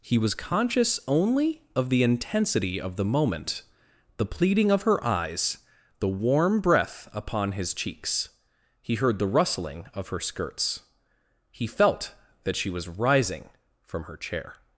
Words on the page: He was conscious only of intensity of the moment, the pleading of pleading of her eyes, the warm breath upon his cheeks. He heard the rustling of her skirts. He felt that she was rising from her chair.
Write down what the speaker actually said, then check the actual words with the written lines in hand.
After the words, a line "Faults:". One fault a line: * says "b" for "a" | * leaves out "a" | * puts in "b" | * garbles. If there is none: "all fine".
He was conscious only of the intensity of the moment, the pleading of her eyes, the warm breath upon his cheeks. He heard the rustling of her skirts. He felt that she was rising from her chair.
Faults:
* puts in "the"
* leaves out "pleading of"